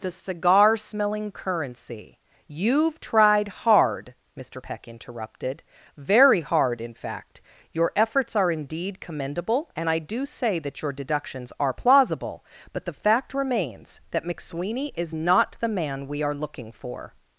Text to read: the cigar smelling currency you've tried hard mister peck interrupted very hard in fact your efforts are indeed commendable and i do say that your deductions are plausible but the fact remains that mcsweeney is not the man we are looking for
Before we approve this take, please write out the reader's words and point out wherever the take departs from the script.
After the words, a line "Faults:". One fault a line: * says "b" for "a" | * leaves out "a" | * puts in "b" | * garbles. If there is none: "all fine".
the cigar smelling currency you've tried hard mister peck interrupted very hard in fact your efforts are indeed commendable and i do say that your deductions are plausible but the fact remains that mcsweeney is not the man we are looking for
Faults:
all fine